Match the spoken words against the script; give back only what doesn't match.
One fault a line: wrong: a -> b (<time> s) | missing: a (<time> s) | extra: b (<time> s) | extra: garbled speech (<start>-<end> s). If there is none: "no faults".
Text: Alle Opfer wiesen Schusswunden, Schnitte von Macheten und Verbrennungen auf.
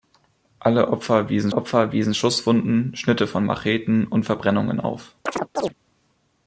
extra: Opfer wiesen (1.5 s)